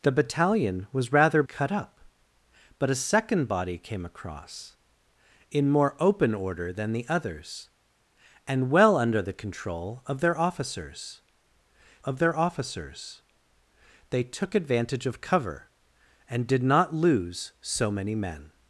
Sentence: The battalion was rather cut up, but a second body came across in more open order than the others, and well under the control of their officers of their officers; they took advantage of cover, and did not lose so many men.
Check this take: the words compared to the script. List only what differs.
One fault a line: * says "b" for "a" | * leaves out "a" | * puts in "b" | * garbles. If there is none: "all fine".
all fine